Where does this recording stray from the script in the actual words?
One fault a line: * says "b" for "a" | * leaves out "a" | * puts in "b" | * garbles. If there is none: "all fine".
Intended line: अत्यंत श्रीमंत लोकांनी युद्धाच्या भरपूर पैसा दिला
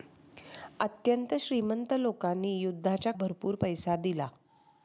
all fine